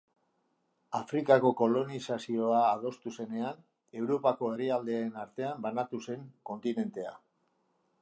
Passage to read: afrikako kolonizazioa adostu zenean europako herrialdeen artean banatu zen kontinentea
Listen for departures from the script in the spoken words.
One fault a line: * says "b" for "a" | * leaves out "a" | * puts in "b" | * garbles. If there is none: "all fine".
all fine